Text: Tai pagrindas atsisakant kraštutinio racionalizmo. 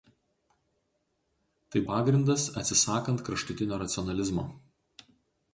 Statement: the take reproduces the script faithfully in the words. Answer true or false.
true